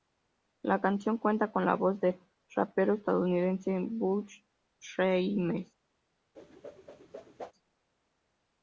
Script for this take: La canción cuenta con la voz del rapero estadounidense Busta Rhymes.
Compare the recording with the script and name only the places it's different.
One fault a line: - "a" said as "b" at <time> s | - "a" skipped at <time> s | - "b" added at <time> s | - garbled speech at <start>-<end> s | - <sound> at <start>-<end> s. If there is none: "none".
- whoosh at 6.3-7.5 s